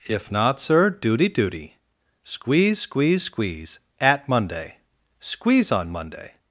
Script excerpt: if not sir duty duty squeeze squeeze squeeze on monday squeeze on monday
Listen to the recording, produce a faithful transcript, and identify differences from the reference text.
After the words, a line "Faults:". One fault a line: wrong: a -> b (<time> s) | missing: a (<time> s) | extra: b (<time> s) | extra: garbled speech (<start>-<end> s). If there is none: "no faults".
if not sir duty duty squeeze squeeze squeeze at monday squeeze on monday
Faults:
wrong: on -> at (4.0 s)